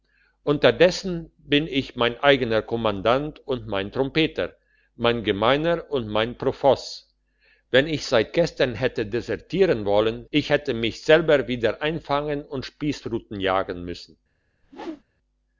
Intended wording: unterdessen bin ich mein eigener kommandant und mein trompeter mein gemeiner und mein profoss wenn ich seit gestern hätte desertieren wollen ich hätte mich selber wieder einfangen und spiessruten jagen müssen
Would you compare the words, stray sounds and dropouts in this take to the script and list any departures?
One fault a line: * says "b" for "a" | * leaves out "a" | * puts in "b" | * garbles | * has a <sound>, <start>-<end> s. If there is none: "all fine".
* has a whoosh, 14.6-15.0 s